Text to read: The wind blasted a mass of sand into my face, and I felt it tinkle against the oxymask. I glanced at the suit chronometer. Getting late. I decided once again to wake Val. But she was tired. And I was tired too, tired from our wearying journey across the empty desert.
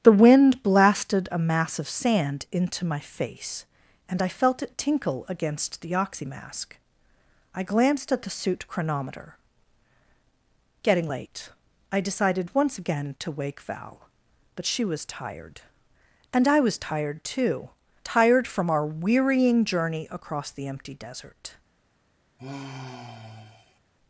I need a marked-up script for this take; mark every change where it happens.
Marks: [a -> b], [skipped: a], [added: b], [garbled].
The wind blasted a mass of sand into my face, and I felt it tinkle against the oxymask. I glanced at the suit chronometer. Getting late. I decided once again to wake Val. But she was tired. And I was tired too, tired from our wearying journey across the empty desert.